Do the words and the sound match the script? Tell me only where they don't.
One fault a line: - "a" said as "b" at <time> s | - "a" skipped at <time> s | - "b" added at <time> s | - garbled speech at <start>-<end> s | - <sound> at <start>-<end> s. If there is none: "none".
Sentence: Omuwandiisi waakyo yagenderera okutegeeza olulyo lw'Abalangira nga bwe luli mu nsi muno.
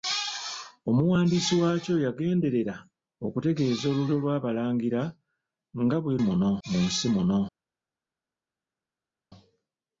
- "luli" said as "muno" at 6.2 s